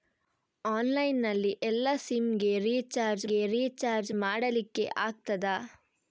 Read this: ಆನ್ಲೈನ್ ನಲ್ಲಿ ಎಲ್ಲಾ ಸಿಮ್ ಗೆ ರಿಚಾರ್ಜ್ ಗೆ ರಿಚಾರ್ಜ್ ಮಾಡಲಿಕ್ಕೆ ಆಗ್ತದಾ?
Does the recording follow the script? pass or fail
pass